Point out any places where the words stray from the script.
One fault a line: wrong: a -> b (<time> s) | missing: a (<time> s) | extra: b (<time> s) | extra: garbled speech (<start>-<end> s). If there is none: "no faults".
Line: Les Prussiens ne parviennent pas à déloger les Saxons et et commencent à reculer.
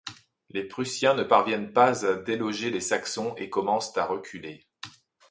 missing: et (3.5 s)